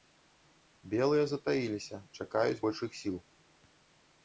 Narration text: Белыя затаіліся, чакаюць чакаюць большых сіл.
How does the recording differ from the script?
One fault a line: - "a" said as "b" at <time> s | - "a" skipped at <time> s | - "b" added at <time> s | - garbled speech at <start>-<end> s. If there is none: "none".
- "чакаюць" skipped at 2.6 s